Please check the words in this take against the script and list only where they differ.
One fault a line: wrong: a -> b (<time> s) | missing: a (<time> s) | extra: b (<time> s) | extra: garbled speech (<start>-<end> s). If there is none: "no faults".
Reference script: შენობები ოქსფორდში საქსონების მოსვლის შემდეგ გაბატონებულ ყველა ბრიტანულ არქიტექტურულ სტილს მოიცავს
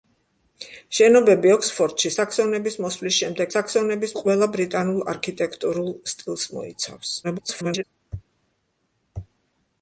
wrong: გაბატონებულ -> საქსონების (3.5 s)
extra: garbled speech (7.2-7.8 s)